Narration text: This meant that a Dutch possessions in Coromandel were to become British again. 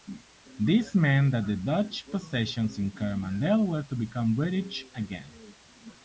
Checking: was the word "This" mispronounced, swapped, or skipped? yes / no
no